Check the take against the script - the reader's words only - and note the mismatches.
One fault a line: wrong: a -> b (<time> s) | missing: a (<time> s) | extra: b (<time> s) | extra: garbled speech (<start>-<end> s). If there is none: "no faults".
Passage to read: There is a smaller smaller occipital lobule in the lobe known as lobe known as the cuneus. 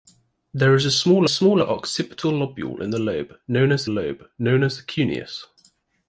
no faults